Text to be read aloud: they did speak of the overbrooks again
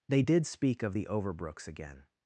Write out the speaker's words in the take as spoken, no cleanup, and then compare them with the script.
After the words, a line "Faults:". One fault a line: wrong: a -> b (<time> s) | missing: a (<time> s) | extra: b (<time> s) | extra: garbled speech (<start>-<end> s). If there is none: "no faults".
they did speak of the overbrooks again
Faults:
no faults